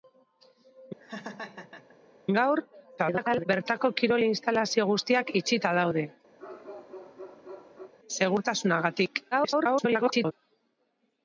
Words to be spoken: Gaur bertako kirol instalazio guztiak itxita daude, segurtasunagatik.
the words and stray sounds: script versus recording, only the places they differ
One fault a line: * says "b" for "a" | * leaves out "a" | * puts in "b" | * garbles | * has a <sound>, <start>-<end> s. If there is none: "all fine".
* has a laugh, 1.0-2.0 s
* garbles
* has a bark, 6.4-7.9 s
* garbles